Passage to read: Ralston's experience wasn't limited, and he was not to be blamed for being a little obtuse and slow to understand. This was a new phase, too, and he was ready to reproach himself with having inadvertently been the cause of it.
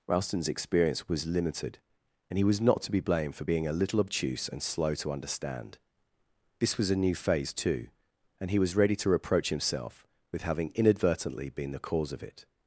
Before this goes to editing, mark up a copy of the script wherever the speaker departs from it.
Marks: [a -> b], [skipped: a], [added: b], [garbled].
Ralston's experience [wasn't -> was] limited, and he was not to be blamed for being a little obtuse and slow to understand. This was a new phase, too, and he was ready to reproach himself with having inadvertently been the cause of it.